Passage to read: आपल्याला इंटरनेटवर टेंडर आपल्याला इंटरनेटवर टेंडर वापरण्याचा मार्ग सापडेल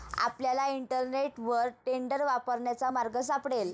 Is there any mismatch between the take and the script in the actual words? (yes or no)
yes